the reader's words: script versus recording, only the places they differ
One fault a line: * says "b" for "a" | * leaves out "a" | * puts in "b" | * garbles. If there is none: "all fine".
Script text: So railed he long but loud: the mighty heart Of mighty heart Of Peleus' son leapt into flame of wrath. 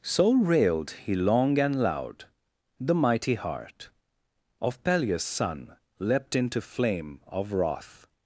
* says "and" for "but"
* leaves out "mighty heart Of"